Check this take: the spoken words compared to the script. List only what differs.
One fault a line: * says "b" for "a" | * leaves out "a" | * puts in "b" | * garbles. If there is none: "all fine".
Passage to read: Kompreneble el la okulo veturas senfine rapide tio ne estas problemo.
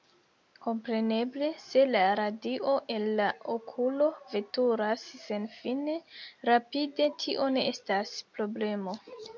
* puts in "se la radio"